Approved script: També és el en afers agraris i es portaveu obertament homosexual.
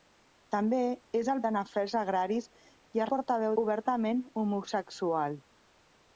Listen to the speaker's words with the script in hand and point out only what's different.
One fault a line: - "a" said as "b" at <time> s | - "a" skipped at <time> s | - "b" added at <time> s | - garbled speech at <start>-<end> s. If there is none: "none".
none